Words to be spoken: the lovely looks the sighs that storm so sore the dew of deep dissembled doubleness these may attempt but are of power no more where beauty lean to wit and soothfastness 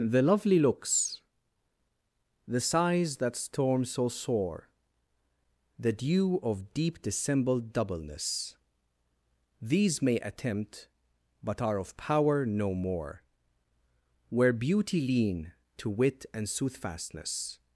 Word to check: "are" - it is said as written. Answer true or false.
true